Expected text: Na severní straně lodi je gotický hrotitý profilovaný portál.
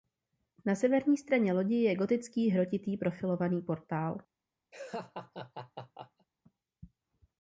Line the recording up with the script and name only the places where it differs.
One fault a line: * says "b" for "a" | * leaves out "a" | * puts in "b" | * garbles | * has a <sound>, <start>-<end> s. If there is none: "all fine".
* has a laugh, 4.7-6.3 s